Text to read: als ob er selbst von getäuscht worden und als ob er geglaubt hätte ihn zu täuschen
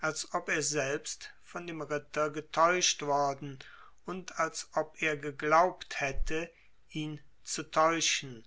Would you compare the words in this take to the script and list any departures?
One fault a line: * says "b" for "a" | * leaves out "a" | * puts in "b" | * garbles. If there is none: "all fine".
* puts in "dem ritter"